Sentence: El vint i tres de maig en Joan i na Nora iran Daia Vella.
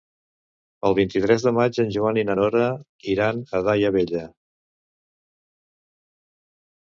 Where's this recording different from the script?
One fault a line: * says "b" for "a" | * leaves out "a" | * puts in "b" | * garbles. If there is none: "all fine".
* puts in "a"